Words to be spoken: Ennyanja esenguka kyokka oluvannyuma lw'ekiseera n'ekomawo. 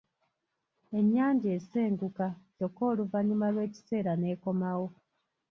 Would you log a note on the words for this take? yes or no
no